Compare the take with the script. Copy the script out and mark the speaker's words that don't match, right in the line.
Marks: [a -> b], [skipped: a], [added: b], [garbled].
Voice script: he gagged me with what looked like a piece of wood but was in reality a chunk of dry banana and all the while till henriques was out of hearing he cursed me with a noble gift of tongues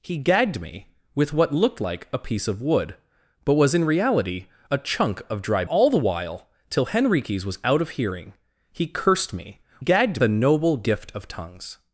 he gagged me with what looked like a piece of wood but was in reality a chunk of dry [skipped: banana and] all the while till henriques was out of hearing he cursed me [with -> gagged] a noble gift of tongues